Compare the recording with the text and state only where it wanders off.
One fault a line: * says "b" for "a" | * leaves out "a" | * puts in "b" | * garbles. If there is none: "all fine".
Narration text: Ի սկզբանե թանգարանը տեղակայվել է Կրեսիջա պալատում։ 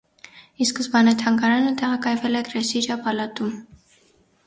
all fine